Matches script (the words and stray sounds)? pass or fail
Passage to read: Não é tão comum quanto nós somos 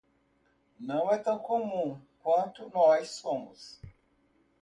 pass